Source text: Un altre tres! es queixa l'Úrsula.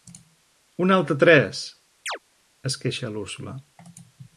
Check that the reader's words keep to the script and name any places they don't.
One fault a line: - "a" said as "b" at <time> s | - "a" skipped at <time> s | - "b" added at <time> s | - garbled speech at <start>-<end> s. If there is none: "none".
none